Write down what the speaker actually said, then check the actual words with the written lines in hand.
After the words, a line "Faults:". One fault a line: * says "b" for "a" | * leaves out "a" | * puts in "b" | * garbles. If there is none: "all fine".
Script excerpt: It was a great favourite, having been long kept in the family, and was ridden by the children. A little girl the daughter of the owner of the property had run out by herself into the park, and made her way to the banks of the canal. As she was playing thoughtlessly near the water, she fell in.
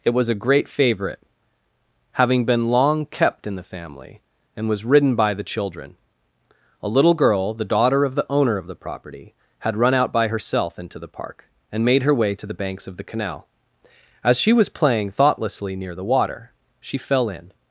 It was a great favourite, having been long kept in the family, and was ridden by the children. A little girl the daughter of the owner of the property had run out by herself into the park, and made her way to the banks of the canal. As she was playing thoughtlessly near the water, she fell in.
Faults:
all fine